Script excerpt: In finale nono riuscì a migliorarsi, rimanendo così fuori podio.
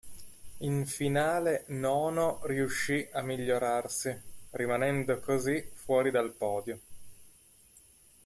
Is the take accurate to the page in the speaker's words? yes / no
no